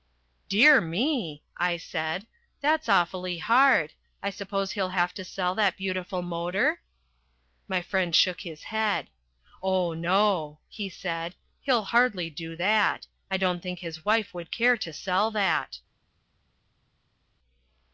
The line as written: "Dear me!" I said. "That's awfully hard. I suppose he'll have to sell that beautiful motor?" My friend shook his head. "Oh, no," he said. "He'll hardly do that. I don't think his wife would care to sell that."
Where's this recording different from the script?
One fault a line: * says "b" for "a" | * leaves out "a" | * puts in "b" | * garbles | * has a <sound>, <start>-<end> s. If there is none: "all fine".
all fine